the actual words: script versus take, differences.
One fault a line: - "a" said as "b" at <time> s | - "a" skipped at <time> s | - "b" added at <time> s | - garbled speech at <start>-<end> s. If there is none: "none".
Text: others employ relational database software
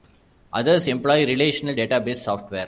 none